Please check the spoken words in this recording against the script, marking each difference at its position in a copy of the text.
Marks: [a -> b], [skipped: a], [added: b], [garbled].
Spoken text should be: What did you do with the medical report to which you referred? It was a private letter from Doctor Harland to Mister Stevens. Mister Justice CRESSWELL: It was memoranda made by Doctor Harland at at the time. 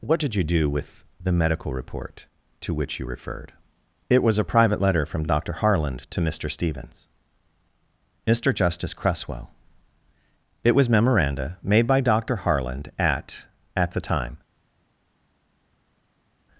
What did you do with the medical report to which you referred? It was a private letter from Doctor Harland to Mister Stevens. Mister Justice CRESSWELL: It was memoranda made by Doctor Harland at at the time.